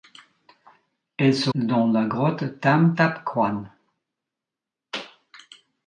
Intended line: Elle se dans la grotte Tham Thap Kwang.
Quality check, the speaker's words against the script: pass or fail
pass